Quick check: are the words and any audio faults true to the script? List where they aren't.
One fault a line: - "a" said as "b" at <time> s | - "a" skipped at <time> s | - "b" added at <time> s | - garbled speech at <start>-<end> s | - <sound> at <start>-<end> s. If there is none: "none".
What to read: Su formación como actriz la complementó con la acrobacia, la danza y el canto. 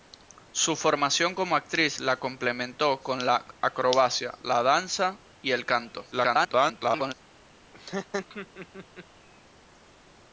- garbled speech at 6.1-7.1 s
- laugh at 7.7-9.1 s